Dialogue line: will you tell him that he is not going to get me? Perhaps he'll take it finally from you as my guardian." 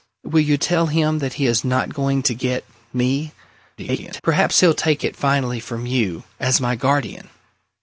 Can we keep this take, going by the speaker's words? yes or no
no